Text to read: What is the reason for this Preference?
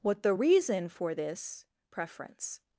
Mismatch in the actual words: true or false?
true